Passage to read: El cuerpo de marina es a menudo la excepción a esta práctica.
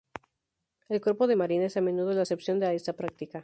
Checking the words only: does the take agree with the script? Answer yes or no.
yes